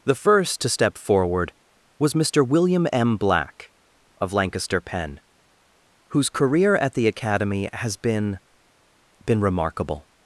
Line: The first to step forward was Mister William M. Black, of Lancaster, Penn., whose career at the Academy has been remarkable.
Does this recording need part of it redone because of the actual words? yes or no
yes